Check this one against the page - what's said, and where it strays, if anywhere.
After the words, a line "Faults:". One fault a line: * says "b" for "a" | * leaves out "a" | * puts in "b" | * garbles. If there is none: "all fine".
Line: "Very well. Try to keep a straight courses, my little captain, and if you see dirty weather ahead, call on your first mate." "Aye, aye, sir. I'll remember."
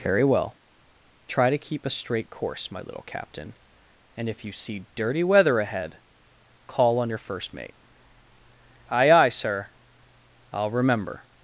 "Very well. Try to keep a straight course, my little captain, and if you see dirty weather ahead, call on your first mate." "Aye, aye, sir. I'll remember."
Faults:
* says "course" for "courses"